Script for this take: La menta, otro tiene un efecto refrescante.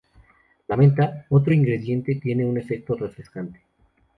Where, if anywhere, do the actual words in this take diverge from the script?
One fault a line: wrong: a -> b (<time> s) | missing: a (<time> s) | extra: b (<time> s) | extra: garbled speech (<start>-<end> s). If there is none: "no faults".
extra: ingrediente (1.5 s)